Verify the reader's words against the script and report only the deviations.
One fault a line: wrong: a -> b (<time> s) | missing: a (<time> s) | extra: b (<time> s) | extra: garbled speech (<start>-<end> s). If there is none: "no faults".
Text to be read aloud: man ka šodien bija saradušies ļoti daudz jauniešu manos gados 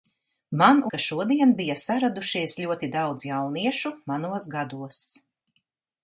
no faults